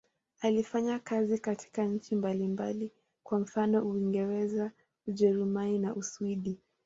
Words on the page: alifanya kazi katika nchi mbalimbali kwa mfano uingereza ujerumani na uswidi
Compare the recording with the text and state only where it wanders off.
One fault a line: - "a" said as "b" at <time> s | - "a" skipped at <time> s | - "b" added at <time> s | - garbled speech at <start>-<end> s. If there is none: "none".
none